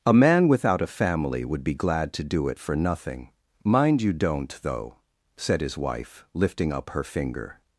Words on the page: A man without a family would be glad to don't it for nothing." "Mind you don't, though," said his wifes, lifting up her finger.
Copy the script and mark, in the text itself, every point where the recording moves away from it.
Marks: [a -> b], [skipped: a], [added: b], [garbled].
A man without a family would be glad to [don't -> do] it for nothing." "Mind you don't, though," said his [wifes, -> wife] lifting up her finger.